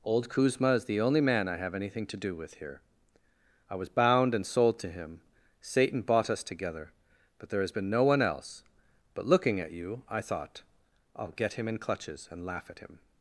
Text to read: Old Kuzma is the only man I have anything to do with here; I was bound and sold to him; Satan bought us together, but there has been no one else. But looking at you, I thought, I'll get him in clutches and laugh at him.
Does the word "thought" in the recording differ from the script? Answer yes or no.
no